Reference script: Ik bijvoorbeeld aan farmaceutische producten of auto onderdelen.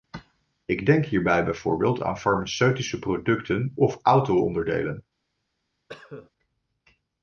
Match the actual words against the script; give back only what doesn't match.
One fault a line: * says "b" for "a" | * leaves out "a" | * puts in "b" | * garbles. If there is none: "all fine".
* puts in "denk hierbij"